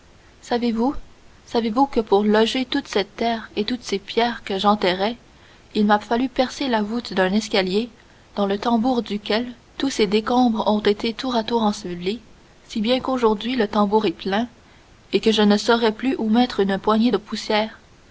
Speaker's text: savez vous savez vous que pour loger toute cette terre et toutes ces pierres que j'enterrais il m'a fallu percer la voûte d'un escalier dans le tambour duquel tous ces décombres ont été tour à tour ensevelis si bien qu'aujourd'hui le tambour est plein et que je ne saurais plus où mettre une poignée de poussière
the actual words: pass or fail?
pass